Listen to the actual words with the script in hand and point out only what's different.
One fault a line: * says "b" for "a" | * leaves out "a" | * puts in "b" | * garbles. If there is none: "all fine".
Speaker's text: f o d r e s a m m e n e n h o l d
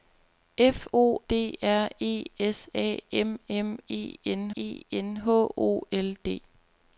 all fine